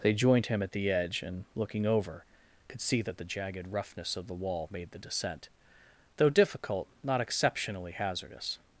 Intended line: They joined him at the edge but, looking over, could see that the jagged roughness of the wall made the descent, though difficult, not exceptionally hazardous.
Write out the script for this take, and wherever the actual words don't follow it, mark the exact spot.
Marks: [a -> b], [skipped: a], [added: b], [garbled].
They joined him at the edge [but, -> and] looking over, could see that the jagged roughness of the wall made the descent, though difficult, not exceptionally hazardous.